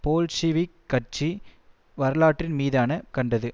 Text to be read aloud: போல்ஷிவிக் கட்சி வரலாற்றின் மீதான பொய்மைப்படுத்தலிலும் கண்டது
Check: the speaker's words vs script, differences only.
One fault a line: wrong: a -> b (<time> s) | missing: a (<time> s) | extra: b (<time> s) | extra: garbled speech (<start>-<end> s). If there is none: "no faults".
missing: பொய்மைப்படுத்தலிலும் (2.9 s)